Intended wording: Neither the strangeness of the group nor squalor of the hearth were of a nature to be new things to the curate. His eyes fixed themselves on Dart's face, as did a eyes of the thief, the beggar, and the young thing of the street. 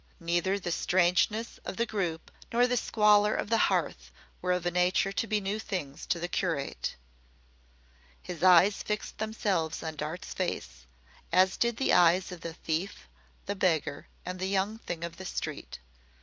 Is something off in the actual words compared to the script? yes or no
yes